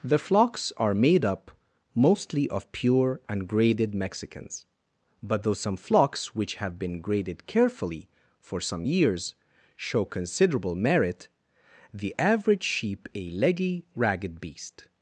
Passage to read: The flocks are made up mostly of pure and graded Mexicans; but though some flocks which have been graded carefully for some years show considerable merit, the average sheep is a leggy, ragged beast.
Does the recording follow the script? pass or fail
fail